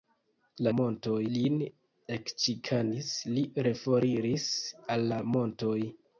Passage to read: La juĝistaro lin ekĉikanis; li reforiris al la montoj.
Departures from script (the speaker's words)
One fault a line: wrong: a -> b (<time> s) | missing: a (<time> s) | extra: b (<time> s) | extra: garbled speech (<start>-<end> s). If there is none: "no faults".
wrong: juĝistaro -> montoj (0.8 s)